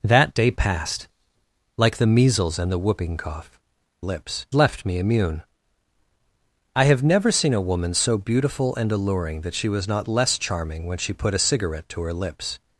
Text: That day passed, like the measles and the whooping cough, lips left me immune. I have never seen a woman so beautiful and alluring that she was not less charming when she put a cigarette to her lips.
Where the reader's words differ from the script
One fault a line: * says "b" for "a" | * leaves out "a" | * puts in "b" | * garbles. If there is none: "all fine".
all fine